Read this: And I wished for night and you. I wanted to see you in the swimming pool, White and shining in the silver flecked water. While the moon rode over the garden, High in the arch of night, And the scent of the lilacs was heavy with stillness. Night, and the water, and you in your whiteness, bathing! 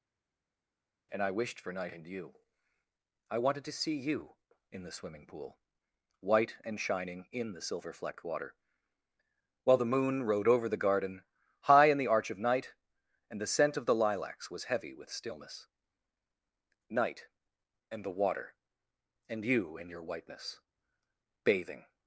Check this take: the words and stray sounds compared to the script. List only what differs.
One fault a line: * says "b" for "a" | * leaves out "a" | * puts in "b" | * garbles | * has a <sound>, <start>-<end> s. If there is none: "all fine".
all fine